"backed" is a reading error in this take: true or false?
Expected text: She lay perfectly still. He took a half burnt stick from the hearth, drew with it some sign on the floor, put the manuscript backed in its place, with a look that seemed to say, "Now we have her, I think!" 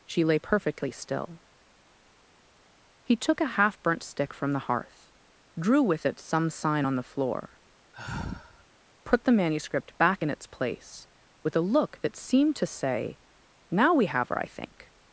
true